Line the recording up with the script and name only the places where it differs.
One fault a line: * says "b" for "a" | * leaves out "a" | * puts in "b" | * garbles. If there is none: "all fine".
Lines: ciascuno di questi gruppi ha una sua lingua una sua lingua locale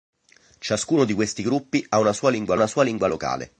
all fine